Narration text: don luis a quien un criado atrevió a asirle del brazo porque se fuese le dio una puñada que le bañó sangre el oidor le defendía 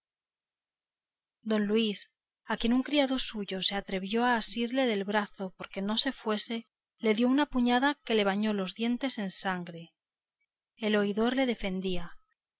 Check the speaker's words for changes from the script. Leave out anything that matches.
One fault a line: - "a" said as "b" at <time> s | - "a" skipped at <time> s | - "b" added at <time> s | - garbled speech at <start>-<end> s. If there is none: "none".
- "suyo se" added at 3.2 s
- "no" added at 5.8 s
- "los dientes en" added at 8.5 s